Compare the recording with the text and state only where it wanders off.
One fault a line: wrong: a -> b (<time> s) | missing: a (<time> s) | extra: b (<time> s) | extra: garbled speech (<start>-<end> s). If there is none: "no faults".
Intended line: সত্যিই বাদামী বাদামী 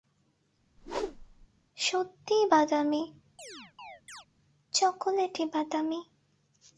extra: চকোলেটি (4.7 s)